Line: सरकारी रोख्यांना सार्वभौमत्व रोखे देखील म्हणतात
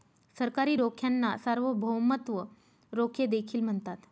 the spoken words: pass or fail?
pass